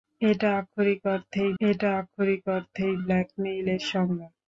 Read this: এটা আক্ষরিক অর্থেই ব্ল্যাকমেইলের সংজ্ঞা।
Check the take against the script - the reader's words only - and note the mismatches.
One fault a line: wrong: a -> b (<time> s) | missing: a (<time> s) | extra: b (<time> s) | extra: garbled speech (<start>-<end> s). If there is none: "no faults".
extra: এটা আক্ষরিক অর্থেই (1.6 s)